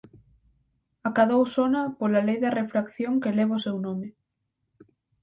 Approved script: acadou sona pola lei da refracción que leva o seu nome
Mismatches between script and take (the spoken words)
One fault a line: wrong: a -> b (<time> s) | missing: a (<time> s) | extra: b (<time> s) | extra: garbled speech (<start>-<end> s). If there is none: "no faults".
no faults